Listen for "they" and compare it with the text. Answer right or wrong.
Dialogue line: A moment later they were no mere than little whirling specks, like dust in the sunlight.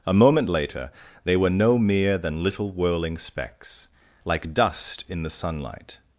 right